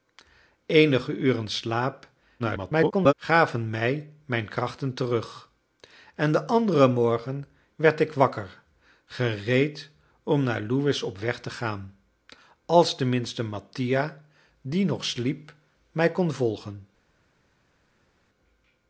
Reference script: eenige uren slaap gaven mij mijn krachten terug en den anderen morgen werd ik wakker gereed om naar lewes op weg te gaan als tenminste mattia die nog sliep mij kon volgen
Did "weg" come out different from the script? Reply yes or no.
no